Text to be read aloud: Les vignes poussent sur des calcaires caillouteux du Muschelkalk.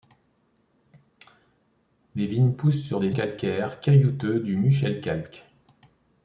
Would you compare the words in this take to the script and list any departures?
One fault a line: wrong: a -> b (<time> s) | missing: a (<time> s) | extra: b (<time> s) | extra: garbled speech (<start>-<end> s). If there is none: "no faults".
no faults